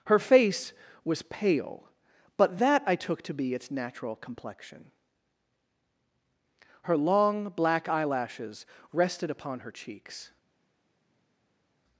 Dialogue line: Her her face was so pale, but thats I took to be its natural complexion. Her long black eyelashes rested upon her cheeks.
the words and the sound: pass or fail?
fail